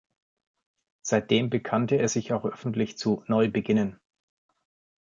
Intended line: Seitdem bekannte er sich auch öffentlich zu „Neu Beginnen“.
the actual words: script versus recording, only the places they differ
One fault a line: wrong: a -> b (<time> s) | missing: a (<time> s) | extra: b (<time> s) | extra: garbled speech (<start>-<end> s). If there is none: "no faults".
no faults